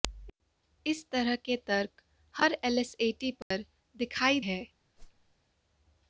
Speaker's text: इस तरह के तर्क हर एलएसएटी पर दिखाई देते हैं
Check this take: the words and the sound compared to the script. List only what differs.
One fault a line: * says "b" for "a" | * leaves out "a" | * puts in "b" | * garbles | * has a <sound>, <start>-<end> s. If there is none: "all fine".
* has a dropout, 3.4-3.5 s
* leaves out "देते"
* has a whoosh, 5.0-5.4 s